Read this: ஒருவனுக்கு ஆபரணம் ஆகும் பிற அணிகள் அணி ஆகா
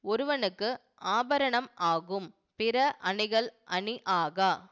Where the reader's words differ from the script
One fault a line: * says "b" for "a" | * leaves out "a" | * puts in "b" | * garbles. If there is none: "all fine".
all fine